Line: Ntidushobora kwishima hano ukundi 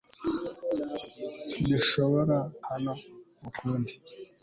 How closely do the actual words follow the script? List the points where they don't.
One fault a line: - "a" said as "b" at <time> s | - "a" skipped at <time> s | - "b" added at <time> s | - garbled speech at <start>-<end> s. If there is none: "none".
- "kwishima" skipped at 2.4 s